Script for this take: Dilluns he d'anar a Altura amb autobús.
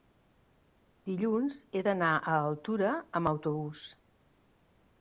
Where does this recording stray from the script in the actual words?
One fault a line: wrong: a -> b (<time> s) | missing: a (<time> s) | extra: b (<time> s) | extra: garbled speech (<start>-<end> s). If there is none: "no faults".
no faults